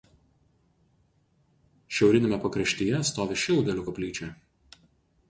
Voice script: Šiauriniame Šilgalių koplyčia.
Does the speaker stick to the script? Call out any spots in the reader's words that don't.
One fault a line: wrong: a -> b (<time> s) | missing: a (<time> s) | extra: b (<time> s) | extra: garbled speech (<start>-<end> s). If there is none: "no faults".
extra: pakraštyje stovi (2.5 s)